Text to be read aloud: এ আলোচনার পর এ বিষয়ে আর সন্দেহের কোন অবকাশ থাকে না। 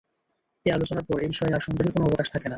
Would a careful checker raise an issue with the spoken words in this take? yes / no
no